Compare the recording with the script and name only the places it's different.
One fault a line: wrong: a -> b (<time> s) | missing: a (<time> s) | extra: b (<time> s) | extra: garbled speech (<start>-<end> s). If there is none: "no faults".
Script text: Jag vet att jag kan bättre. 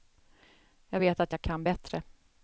no faults